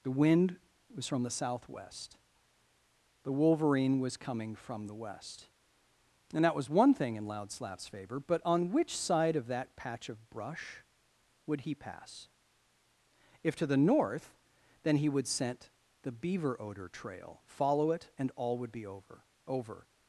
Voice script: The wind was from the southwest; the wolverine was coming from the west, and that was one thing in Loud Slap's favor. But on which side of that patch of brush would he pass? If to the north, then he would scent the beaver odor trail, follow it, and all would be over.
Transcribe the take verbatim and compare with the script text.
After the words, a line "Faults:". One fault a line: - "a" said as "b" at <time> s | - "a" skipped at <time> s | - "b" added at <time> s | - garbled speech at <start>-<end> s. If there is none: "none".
The wind was from the southwest; the wolverine was coming from the west, and that was one thing in Loud Slap's favor. But on which side of that patch of brush would he pass? If to the north, then he would scent the beaver odor trail, follow it, and all would be over over.
Faults:
- "over" added at 19.5 s